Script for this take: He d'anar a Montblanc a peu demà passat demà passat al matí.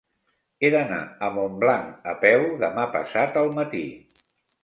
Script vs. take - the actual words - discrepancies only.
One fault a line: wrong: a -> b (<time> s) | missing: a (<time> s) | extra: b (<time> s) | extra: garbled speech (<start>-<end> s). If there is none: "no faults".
missing: demà passat (3.4 s)